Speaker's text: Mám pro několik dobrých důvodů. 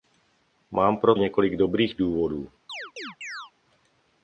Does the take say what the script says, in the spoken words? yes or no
yes